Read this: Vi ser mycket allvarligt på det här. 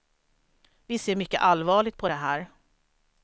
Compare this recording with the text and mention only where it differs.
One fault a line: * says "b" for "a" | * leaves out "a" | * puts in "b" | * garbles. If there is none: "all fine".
all fine